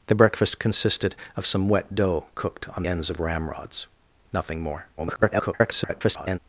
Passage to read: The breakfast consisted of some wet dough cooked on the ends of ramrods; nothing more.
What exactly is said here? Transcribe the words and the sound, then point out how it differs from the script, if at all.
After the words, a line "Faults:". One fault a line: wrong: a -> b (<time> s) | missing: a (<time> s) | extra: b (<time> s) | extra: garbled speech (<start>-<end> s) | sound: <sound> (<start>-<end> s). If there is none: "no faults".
The breakfast consisted of some wet dough cooked on ends of ramrods; nothing more. [garbled]
Faults:
missing: the (2.8 s)
extra: garbled speech (5.0-6.4 s)